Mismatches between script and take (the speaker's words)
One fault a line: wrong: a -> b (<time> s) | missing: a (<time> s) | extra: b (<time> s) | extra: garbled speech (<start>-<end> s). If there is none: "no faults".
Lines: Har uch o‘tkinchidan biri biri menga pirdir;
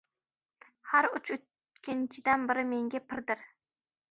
missing: biri (2.7 s)